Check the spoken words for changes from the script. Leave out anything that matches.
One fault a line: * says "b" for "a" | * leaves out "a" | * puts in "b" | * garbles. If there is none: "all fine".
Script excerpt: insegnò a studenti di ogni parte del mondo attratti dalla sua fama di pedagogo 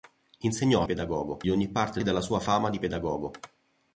* says "pedagogo" for "studenti"
* leaves out "del mondo attratti"